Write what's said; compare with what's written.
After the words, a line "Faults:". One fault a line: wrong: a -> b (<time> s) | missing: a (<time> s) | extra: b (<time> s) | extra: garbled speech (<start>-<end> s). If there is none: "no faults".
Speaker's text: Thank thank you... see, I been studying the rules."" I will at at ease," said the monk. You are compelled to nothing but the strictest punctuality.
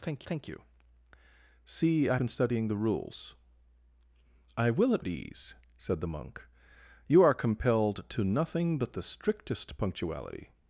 Thank thank you... see, I been studying the rules."" I will at at ease," said the monk. You are compelled to nothing but the strictest punctuality.
Faults:
no faults